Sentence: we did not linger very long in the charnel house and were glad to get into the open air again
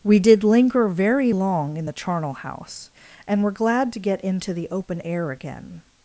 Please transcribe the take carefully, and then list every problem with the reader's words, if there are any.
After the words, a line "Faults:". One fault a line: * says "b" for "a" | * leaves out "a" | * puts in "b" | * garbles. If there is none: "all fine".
we did linger very long in the charnel house and were glad to get into the open air again
Faults:
* leaves out "not"